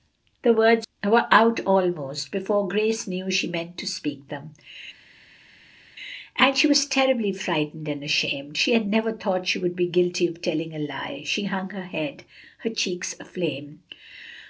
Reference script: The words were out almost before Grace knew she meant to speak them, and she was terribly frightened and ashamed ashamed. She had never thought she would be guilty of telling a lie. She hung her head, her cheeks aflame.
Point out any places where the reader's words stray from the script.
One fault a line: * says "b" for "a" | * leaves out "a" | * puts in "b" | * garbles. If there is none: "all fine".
* leaves out "ashamed"